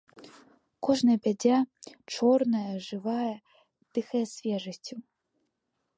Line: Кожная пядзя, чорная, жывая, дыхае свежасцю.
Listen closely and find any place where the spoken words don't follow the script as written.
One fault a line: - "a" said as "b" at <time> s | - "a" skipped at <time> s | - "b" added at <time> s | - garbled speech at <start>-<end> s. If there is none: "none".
none